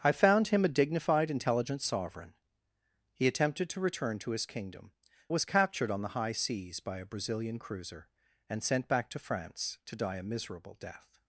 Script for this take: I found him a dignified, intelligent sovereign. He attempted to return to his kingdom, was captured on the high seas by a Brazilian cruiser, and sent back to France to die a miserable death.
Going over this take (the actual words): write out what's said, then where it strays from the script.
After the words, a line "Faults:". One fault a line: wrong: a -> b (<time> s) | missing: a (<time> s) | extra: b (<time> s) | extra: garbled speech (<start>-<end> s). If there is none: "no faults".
I found him a dignified, intelligent sovereign. He attempted to return to his kingdom, was captured on the high seas by a Brazilian cruiser, and sent back to France to die a miserable death.
Faults:
no faults